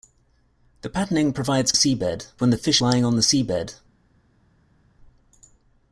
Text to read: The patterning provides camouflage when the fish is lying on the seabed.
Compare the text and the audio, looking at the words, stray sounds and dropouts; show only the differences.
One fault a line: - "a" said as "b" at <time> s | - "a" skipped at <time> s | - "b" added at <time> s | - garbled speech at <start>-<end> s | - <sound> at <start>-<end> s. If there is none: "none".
- "camouflage" said as "seabed" at 1.7 s
- "is" skipped at 2.8 s